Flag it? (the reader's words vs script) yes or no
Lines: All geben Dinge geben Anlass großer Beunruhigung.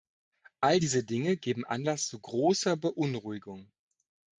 yes